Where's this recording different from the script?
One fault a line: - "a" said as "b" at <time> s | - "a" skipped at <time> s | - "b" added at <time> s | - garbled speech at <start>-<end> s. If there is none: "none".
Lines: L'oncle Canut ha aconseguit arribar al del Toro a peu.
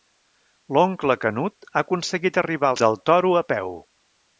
none